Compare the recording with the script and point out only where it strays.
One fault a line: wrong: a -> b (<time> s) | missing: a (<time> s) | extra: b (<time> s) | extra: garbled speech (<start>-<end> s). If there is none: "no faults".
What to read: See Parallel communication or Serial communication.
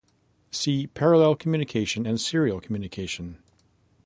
wrong: or -> and (2.0 s)